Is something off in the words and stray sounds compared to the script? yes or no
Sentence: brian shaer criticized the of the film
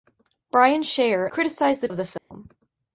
yes